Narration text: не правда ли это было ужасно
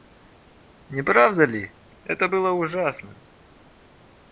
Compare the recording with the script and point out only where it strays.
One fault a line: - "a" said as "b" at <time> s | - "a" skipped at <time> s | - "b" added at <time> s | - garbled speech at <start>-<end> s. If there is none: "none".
none